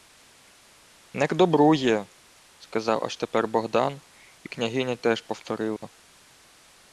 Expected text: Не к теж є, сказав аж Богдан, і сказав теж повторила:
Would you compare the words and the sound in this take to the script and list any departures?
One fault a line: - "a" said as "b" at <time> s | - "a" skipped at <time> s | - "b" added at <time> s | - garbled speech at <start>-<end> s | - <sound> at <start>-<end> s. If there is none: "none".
- "теж" said as "добру" at 1.4 s
- "тепер" added at 3.2 s
- "сказав" said as "княгиня" at 4.5 s
- dropout at 5.8-5.8 s